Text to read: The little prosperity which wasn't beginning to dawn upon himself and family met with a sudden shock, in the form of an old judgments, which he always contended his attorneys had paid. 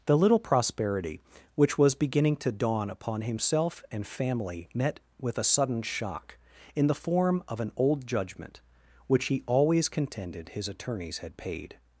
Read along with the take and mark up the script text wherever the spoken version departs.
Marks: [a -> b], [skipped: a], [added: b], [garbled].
The little prosperity which [wasn't -> was] beginning to dawn upon himself and family met with a sudden shock, in the form of an old [judgments, -> judgment] which he always contended his attorneys had paid.